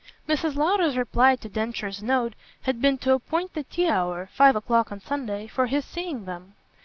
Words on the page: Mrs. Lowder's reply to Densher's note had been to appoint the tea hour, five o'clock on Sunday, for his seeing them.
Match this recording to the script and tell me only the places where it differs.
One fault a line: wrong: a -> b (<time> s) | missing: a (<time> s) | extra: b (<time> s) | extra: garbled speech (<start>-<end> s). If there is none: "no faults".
no faults